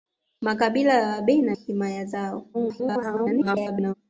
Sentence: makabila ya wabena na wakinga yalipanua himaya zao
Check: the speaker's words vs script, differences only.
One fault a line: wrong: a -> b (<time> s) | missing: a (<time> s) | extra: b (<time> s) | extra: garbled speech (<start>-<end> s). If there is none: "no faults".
missing: na wakinga yalipanua (1.6 s)
extra: garbled speech (2.5-3.9 s)